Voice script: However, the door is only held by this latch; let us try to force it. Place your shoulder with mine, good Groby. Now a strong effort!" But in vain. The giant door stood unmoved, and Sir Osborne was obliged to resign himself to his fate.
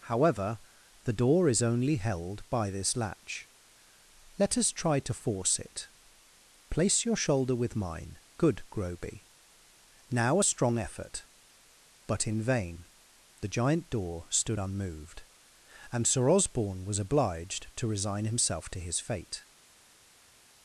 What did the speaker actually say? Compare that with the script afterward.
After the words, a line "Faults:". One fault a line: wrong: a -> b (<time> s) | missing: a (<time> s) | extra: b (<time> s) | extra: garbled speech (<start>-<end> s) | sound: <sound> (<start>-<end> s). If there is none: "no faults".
However, the door is only held by this latch; let us try to force it. Place your shoulder with mine, good Groby. Now a strong effort!" But in vain. The giant door stood unmoved, and Sir Osborne was obliged to resign himself to his fate.
Faults:
no faults